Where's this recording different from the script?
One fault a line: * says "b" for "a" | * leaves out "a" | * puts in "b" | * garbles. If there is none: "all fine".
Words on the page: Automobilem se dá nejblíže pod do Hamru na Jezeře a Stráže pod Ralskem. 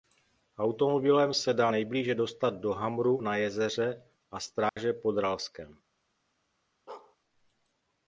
* says "dostat" for "pod"